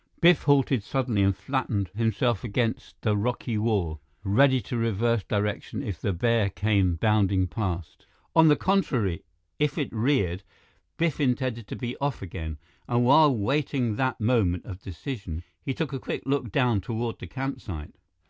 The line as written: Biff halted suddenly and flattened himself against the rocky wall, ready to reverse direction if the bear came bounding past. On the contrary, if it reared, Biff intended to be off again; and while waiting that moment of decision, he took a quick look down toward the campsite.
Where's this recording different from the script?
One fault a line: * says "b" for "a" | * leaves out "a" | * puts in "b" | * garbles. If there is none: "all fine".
all fine